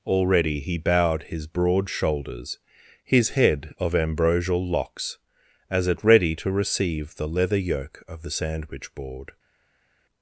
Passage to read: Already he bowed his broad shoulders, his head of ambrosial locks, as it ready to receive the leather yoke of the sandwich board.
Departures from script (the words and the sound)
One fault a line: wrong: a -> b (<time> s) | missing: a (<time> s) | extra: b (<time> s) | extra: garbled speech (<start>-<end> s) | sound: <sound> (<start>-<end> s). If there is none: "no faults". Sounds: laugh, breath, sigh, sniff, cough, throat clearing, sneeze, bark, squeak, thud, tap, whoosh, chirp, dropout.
no faults